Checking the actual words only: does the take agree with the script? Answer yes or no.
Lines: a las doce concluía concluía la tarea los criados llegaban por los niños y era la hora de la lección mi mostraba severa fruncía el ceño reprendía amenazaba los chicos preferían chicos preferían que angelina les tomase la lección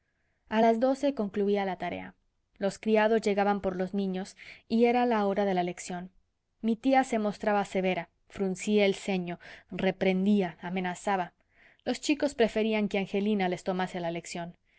no